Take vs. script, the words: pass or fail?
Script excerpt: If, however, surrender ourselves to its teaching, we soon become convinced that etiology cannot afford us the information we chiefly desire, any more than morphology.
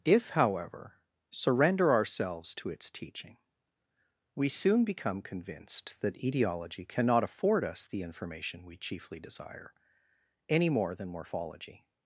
pass